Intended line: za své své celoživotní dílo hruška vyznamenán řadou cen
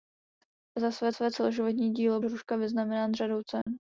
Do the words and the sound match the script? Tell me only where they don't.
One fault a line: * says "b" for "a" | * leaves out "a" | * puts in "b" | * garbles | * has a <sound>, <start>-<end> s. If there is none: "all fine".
* has a dropout, 3.6-3.7 s